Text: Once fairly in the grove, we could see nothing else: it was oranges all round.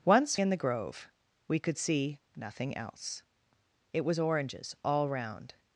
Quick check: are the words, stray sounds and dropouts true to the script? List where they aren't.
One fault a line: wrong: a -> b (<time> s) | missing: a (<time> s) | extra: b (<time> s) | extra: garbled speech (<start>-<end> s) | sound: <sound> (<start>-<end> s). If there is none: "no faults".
missing: fairly (0.3 s)